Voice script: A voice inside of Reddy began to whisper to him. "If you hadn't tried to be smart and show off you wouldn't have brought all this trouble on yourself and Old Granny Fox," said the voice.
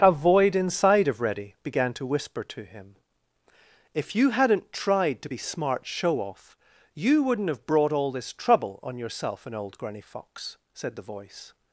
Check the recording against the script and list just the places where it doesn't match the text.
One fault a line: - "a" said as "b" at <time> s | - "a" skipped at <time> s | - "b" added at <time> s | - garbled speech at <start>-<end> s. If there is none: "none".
- "voice" said as "void" at 0.1 s
- "and" skipped at 5.8 s